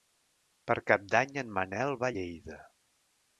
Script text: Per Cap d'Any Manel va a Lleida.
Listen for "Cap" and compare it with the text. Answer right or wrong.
right